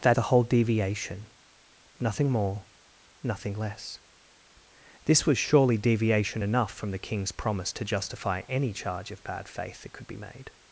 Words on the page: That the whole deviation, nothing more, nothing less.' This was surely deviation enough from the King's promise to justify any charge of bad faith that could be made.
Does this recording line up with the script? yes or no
yes